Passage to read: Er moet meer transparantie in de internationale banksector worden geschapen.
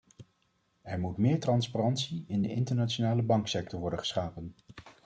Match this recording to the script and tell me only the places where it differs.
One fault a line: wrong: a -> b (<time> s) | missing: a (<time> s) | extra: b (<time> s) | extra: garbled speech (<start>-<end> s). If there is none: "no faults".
no faults